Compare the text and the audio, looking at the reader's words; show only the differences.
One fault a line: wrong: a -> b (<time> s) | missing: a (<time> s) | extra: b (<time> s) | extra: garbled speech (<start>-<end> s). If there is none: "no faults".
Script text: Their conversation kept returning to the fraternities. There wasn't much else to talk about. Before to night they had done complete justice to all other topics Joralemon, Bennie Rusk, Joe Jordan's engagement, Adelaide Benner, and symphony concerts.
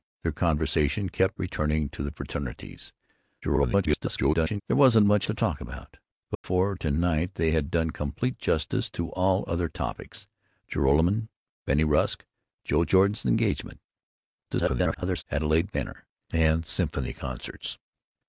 extra: garbled speech (3.4-4.6 s)
missing: else (5.3 s)
extra: garbled speech (14.5-15.2 s)